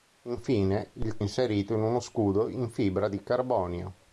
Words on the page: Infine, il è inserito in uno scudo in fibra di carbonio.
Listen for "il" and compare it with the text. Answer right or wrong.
right